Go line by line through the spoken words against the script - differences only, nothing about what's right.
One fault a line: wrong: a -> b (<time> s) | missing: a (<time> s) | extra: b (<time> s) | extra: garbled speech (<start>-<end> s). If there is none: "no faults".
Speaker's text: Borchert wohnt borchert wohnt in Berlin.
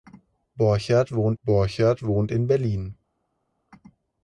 no faults